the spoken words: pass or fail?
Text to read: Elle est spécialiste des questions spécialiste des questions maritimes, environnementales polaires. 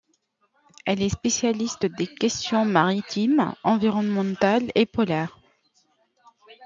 fail